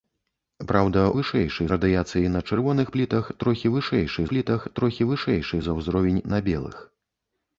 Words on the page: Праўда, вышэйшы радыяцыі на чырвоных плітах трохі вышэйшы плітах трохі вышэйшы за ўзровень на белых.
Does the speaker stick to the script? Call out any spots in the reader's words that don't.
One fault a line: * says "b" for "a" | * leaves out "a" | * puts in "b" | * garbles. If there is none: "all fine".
all fine